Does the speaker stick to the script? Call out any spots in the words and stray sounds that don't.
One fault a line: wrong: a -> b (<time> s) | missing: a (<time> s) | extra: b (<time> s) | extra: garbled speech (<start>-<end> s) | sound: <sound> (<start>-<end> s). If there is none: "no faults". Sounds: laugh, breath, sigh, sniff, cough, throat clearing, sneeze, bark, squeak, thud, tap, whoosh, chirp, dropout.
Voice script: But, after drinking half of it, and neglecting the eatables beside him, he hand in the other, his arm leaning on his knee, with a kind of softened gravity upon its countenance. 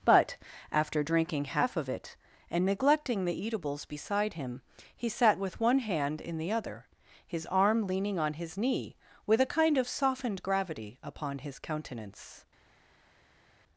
extra: sat with one (5.1 s)
wrong: its -> his (11.4 s)